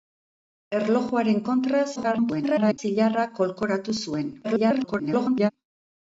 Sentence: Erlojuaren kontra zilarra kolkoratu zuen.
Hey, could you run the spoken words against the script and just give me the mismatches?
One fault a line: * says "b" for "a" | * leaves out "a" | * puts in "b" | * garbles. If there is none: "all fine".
* garbles
* garbles